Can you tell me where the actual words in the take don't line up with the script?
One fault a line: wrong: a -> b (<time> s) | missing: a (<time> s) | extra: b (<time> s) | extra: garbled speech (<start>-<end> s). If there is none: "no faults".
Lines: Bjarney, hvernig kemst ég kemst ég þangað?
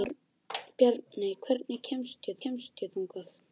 no faults